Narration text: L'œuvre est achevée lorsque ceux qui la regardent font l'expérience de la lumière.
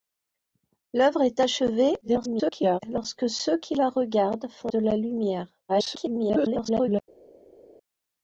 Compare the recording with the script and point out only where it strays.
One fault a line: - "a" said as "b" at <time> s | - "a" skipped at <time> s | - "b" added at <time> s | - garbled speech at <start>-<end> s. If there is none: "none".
- garbled speech at 2.0-2.8 s
- "l'expérience" skipped at 4.7 s
- garbled speech at 5.7-7.0 s